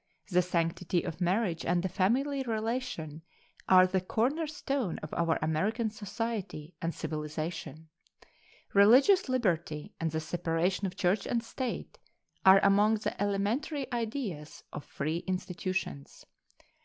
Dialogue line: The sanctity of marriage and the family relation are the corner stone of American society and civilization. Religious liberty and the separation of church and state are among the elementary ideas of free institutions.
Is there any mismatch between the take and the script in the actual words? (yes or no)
yes